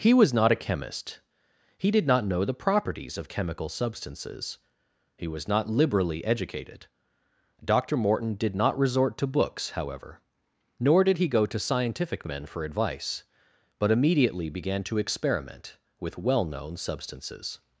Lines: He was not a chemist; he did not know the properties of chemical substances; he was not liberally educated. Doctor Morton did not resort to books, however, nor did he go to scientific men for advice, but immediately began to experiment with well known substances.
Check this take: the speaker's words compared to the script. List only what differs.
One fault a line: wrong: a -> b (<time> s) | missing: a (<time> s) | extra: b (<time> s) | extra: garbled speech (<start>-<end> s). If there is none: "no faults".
no faults